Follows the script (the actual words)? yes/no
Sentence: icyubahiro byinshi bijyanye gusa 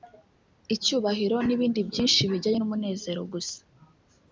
no